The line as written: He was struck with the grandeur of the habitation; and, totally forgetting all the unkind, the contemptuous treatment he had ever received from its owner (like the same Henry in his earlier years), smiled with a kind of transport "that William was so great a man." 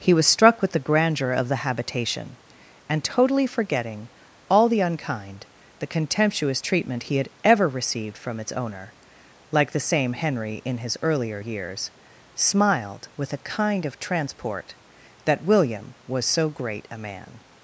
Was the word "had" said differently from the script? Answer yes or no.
no